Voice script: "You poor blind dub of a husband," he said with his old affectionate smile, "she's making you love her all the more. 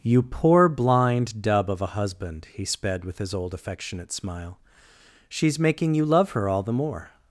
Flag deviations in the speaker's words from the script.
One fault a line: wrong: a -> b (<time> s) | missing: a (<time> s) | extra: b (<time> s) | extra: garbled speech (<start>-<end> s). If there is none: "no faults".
wrong: said -> sped (2.6 s)